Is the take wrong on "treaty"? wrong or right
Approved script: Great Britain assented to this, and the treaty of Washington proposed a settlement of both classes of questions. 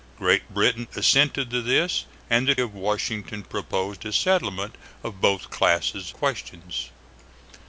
wrong